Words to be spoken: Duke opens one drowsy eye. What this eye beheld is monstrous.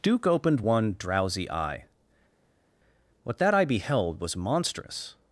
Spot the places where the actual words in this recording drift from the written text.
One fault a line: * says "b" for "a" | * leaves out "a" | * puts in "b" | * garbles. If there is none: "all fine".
* says "opened" for "opens"
* says "that" for "this"
* says "was" for "is"